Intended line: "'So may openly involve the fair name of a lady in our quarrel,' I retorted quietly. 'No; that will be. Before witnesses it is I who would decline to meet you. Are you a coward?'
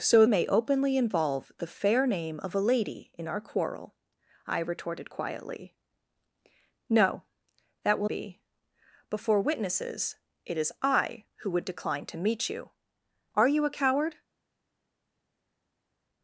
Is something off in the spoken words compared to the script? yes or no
no